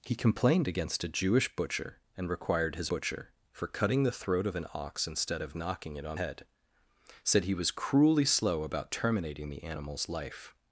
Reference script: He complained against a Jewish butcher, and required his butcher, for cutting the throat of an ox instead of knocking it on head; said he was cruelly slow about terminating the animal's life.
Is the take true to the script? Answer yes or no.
yes